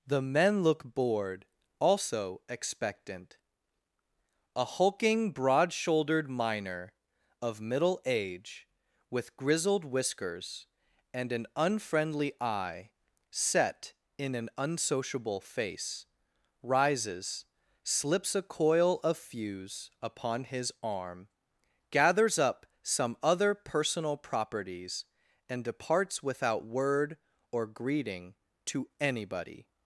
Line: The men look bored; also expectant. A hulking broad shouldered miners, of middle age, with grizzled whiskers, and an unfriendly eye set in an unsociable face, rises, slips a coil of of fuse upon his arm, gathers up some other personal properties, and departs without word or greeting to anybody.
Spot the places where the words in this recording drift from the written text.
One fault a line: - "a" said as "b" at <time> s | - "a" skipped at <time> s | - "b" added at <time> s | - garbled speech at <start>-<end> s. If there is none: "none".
- "miners" said as "miner" at 6.3 s
- "of" skipped at 19.2 s